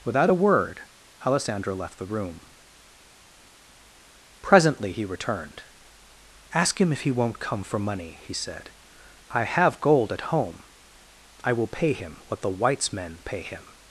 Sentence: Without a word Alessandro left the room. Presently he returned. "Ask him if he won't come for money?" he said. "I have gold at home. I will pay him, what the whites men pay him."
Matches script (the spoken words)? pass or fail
pass